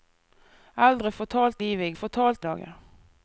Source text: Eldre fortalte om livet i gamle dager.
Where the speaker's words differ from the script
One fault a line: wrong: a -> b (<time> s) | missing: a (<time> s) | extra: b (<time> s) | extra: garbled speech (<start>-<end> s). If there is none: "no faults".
missing: om (1.6 s)
wrong: gamle -> fortalte (1.9 s)